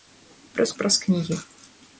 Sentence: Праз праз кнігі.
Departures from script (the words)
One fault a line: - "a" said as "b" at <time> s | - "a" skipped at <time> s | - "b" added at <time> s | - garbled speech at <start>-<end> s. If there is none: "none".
none